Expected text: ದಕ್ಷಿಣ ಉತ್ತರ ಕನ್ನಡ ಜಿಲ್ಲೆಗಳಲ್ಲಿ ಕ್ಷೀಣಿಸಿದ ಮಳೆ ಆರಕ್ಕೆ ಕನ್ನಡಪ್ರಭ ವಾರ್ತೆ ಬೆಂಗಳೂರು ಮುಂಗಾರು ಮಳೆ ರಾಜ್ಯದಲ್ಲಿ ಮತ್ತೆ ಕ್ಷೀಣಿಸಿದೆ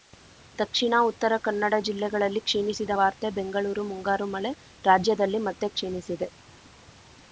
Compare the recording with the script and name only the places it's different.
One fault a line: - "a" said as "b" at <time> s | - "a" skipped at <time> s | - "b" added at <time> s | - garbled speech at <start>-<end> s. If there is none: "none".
- "ಮಳೆ ಆರಕ್ಕೆ ಕನ್ನಡಪ್ರಭ" skipped at 2.9 s